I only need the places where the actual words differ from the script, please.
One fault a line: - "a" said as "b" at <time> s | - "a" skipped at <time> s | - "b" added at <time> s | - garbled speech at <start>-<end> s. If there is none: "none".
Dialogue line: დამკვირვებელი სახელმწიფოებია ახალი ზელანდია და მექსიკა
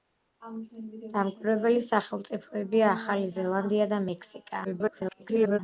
- garbled speech at 4.6-5.6 s